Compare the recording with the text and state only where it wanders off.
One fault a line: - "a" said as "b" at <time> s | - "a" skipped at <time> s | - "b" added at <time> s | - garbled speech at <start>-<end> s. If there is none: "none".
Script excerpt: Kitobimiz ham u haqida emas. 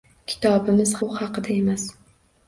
- "ham" skipped at 0.9 s